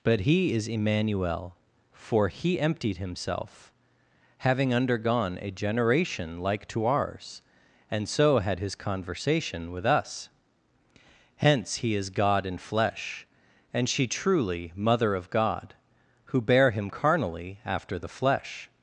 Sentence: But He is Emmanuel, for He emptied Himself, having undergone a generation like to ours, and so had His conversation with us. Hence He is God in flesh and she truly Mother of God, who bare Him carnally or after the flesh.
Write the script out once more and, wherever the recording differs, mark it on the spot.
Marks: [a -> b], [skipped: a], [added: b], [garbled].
But He is Emmanuel, for He emptied Himself, having undergone a generation like to ours, and so had His conversation with us. Hence He is God in flesh and she truly Mother of God, who bare Him carnally [skipped: or] after the flesh.